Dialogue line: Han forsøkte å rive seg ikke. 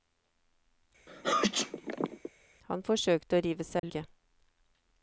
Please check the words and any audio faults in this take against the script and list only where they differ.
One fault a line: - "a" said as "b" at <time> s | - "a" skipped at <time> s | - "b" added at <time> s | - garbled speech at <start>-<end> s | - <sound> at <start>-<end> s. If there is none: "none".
- sneeze at 1.1-2.3 s
- dropout at 3.8-3.8 s